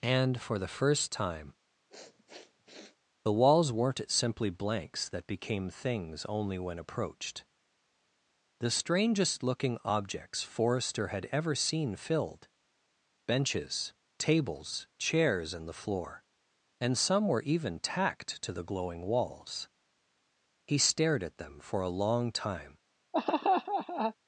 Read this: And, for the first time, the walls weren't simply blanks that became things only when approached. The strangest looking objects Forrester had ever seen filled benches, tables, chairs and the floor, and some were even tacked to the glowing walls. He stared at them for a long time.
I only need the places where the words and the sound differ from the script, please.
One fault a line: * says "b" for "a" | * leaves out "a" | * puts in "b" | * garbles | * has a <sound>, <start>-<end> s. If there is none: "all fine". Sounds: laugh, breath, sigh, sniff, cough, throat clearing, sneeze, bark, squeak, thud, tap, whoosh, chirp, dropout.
* has a sniff, 1.9-3.0 s
* has a laugh, 23.1-24.1 s